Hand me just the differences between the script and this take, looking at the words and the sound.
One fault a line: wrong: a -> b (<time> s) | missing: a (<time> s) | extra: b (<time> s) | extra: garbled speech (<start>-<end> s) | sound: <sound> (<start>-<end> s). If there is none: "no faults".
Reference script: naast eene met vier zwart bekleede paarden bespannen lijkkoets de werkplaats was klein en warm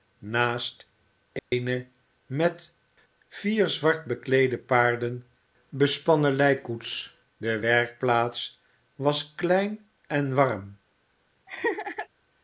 sound: dropout (1.4-1.5 s)
sound: laugh (11.5-12.1 s)